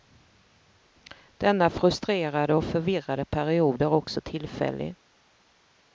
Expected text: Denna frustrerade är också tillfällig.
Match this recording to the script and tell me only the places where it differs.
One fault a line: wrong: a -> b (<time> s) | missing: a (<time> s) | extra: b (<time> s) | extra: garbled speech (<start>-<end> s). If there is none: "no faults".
extra: och förvirrade period (2.5 s)